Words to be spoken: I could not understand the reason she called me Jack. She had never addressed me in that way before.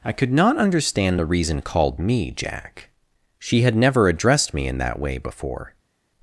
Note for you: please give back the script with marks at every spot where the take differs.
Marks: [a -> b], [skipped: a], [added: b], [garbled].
I could not understand the reason [skipped: she] called me Jack. She had never addressed me in that way before.